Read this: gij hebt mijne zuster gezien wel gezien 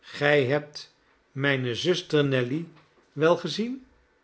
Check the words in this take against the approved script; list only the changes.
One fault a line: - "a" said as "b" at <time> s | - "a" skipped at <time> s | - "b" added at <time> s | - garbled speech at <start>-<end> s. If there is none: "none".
- "gezien" said as "nelly" at 2.2 s